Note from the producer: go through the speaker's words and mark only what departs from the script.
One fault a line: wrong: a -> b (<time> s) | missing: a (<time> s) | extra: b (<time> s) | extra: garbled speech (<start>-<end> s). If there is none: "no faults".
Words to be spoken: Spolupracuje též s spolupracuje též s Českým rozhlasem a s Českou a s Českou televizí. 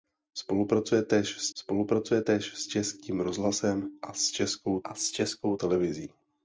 no faults